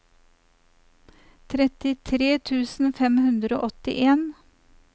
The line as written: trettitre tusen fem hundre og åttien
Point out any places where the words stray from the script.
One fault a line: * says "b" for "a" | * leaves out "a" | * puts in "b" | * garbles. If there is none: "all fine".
all fine